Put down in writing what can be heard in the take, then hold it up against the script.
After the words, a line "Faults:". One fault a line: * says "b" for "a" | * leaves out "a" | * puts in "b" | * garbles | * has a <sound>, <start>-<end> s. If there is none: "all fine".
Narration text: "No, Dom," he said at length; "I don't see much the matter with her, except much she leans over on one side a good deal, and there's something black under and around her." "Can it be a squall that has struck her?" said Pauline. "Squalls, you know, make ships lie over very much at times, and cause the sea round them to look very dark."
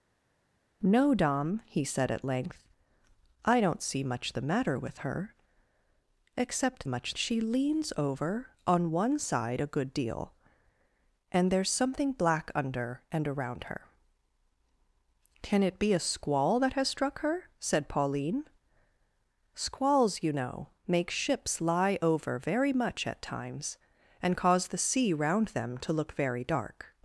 "No, Dom," he said at length; "I don't see much the matter with her, except much she leans over on one side a good deal, and there's something black under and around her." "Can it be a squall that has struck her?" said Pauline. "Squalls, you know, make ships lie over very much at times, and cause the sea round them to look very dark."
Faults:
all fine